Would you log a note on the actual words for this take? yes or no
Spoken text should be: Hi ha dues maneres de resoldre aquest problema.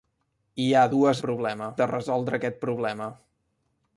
yes